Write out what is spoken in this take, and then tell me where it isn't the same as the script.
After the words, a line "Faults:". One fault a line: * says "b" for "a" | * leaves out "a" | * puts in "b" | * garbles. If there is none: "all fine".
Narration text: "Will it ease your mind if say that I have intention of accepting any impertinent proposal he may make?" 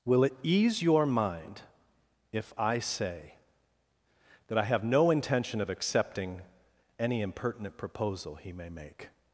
"Will it ease your mind if I say that I have no intention of accepting any impertinent proposal he may make?"
Faults:
* puts in "I"
* puts in "no"